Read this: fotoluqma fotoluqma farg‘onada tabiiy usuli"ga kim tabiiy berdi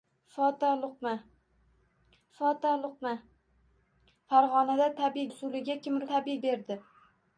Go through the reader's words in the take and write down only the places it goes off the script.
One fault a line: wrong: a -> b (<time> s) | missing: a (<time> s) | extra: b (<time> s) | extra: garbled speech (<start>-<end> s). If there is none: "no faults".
no faults